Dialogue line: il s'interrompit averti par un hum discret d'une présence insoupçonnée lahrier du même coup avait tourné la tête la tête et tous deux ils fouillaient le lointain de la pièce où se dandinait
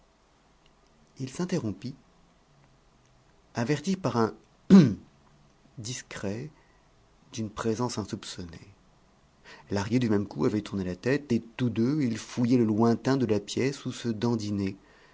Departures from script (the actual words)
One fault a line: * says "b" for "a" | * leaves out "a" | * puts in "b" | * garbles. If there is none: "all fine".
* leaves out "la tête"